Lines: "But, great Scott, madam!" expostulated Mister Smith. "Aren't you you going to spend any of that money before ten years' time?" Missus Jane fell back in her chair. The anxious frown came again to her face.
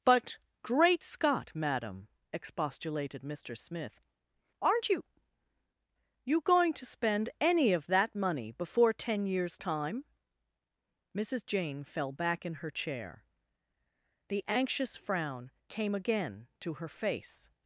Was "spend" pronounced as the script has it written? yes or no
yes